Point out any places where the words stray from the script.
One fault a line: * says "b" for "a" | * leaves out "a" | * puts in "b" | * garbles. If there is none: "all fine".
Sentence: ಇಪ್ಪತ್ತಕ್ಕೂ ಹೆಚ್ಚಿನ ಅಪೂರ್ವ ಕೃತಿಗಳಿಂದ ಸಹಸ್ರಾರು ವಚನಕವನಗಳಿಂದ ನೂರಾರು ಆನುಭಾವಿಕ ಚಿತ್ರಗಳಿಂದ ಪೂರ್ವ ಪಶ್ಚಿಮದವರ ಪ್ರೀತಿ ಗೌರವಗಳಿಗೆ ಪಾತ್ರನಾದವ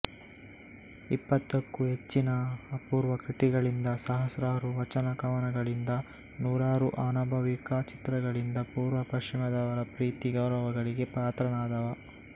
all fine